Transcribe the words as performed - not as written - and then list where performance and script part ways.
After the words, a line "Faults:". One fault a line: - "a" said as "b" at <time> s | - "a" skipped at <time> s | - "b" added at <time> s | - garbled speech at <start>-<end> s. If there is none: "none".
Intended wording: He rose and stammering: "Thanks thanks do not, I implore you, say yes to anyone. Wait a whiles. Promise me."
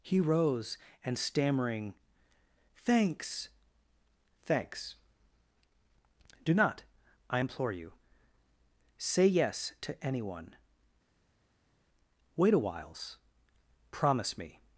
He rose and stammering: "Thanks thanks do not, I implore you, say yes to anyone. Wait a whiles. Promise me."
Faults:
none